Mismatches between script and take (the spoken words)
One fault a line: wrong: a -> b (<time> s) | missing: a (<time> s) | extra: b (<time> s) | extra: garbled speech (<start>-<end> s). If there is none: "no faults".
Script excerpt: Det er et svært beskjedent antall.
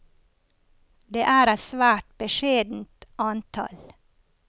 no faults